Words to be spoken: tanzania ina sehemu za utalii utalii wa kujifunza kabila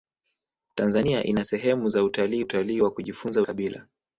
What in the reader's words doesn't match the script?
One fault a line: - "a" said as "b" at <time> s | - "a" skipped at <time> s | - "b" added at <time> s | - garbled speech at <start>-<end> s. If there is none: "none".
none